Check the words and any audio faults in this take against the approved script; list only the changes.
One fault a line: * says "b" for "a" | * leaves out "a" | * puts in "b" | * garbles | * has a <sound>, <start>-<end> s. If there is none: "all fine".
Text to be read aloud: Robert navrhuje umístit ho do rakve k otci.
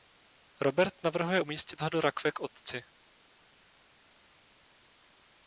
all fine